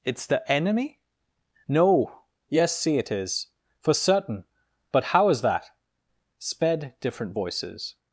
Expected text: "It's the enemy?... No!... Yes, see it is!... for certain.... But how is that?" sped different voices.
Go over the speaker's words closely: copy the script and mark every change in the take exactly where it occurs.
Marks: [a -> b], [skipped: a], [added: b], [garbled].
"It's the enemy?... No!... Yes, see it is!... for certain.... But how is that?" sped different voices.